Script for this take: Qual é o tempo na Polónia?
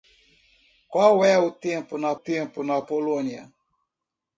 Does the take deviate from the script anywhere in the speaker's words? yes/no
yes